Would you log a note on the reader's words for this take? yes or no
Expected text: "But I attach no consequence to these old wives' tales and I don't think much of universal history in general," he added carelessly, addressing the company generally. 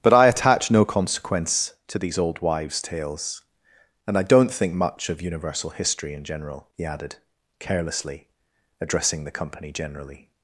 no